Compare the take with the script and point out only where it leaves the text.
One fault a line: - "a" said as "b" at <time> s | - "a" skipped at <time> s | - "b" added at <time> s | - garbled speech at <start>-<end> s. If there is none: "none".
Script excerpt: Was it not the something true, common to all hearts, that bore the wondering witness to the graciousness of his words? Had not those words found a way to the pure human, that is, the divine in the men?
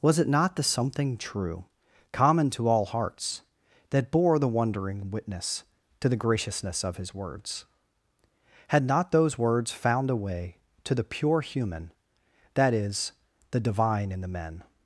none